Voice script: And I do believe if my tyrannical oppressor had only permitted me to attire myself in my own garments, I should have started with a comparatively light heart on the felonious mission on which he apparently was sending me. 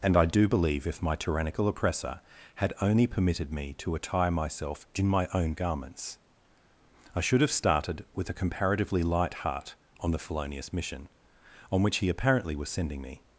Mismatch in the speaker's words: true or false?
false